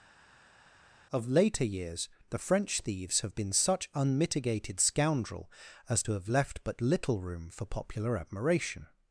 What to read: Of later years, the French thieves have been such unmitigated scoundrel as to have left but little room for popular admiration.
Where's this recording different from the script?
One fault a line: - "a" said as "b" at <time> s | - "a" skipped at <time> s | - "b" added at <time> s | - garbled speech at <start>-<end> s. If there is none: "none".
none